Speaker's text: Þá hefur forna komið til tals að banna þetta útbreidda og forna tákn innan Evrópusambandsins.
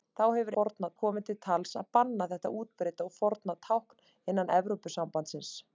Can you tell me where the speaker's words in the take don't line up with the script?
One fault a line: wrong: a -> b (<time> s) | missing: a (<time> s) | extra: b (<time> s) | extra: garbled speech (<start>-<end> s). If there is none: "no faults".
no faults